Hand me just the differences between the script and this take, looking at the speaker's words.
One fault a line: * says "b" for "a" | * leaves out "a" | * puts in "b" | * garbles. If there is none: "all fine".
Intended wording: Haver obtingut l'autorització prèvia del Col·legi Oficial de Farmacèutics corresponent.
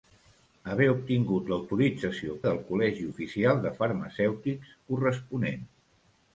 * leaves out "prèvia"